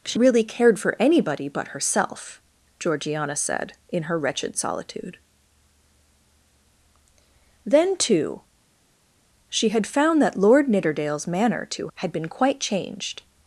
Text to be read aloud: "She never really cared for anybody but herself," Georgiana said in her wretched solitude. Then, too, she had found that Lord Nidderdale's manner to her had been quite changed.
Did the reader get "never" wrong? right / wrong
wrong